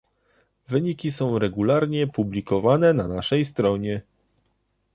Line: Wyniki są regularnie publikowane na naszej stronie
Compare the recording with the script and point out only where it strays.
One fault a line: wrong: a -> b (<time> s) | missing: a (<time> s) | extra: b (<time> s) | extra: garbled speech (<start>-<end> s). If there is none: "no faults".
no faults